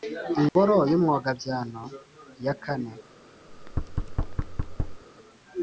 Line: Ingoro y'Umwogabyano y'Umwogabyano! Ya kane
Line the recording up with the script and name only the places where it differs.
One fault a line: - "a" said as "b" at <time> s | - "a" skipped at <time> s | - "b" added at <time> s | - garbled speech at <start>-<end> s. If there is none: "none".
- "y'Umwogabyano" skipped at 1.8 s